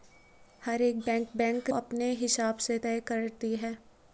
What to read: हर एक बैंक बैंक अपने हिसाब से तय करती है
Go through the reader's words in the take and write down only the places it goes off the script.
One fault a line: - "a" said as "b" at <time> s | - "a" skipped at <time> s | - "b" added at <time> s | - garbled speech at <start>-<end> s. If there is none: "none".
none